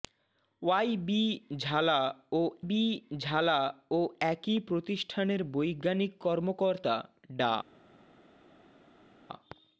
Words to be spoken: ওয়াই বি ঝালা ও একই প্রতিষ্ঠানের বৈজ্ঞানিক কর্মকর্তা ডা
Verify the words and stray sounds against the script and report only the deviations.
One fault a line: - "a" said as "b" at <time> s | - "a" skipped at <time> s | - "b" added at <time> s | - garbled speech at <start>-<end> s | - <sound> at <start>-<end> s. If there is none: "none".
- "বি ঝালা ও" added at 2.7 s